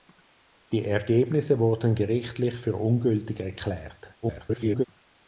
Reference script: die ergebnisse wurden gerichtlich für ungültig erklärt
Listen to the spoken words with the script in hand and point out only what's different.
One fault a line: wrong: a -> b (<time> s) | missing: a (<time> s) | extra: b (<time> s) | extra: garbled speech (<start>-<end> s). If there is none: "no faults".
extra: garbled speech (4.2-4.9 s)